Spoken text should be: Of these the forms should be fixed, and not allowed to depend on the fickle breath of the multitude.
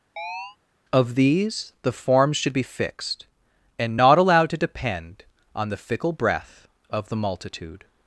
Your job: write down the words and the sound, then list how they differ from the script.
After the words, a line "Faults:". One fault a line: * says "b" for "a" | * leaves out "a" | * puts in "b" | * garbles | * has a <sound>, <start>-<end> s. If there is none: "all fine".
Of these the forms should be fixed, and not allowed to depend on the fickle breath of the multitude.
Faults:
* has a chirp, 0.2-0.6 s